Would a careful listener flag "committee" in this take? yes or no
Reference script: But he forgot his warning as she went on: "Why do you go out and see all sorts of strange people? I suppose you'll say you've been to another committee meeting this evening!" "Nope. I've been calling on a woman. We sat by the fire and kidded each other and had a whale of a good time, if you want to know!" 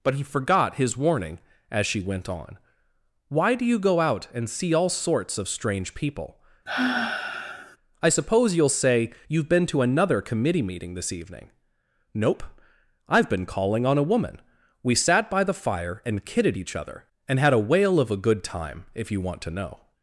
no